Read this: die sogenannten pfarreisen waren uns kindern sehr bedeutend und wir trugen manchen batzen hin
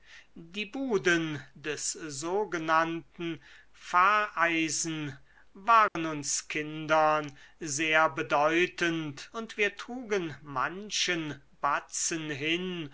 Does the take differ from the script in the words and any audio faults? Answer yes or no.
yes